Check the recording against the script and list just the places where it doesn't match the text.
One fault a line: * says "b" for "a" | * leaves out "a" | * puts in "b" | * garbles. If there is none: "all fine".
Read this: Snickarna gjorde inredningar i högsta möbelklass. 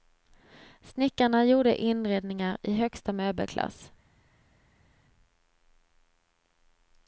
all fine